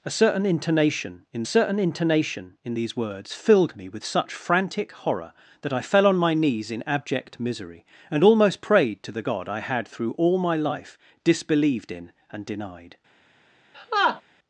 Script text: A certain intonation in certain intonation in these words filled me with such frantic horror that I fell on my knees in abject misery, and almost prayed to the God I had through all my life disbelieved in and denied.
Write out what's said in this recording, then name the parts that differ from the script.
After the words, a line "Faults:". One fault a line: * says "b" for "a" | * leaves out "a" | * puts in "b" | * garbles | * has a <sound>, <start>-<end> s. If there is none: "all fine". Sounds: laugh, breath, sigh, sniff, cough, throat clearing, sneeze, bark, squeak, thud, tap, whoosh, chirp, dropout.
A certain intonation in certain intonation in these words filled me with such frantic horror that I fell on my knees in abject misery, and almost prayed to the God I had through all my life disbelieved in and denied.
Faults:
* has a laugh, 13.7-14.2 s